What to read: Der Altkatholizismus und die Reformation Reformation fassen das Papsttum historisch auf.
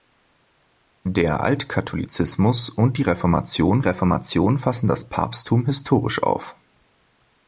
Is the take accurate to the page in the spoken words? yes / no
yes